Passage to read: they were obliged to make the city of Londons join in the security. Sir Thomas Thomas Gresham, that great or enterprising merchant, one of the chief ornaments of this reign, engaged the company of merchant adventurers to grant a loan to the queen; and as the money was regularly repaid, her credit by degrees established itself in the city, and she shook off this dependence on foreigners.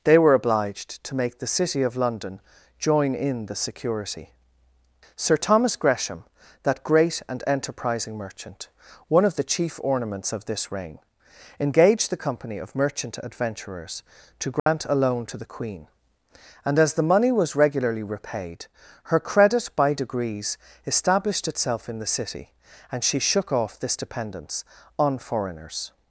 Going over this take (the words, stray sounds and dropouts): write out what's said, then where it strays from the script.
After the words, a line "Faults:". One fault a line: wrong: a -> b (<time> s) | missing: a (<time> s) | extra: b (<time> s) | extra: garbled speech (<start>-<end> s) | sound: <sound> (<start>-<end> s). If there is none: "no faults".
they were obliged to make the city of London join in the security. Sir Thomas Gresham, that great and enterprising merchant, one of the chief ornaments of this reign, engaged the company of merchant adventurers to grant a loan to the queen; and as the money was regularly repaid, her credit by degrees established itself in the city, and she shook off this dependence on foreigners.
Faults:
wrong: Londons -> London (2.0 s)
missing: Thomas (5.8 s)
wrong: or -> and (7.3 s)
sound: dropout (14.6-14.7 s)